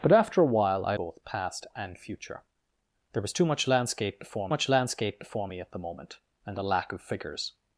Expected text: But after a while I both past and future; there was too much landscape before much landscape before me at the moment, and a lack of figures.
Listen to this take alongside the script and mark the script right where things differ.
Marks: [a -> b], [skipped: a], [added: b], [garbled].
But after a while I both past and future; there was too much landscape before much landscape before me at the moment, and a lack of figures.